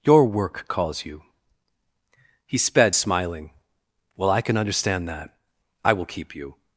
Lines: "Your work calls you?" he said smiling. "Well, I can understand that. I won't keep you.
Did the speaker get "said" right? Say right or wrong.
wrong